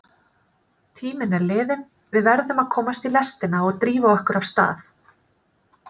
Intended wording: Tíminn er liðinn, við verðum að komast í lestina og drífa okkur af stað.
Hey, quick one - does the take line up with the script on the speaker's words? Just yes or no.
yes